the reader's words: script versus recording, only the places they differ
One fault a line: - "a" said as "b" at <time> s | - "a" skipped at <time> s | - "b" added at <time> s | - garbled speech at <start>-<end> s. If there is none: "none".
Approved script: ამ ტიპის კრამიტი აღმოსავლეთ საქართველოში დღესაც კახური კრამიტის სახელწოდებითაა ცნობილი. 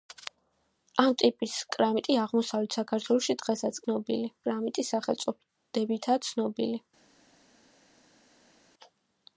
- "კახური" said as "ცნობილი" at 3.8 s